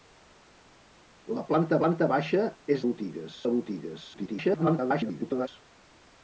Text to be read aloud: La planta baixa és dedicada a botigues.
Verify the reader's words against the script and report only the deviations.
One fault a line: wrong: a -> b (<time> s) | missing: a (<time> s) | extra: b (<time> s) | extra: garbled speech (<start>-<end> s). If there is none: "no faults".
extra: planta (1.8 s)
wrong: dedicada -> botigues (2.9 s)
extra: garbled speech (4.1-5.5 s)